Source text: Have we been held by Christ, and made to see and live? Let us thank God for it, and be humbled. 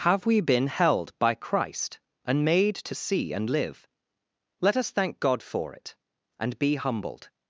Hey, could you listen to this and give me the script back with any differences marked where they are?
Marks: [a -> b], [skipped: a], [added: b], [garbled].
Have we been held by Christ, and made to see and live? Let us thank God for it, and be humbled.